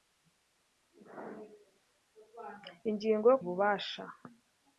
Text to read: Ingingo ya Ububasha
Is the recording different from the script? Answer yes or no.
no